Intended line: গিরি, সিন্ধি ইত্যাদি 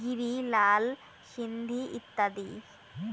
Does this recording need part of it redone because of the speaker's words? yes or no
yes